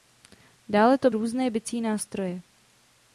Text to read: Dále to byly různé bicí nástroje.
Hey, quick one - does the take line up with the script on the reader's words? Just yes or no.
no